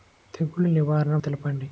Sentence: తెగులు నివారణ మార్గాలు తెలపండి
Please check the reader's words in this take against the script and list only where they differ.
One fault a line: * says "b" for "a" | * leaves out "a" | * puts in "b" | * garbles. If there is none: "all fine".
* leaves out "మార్గాలు"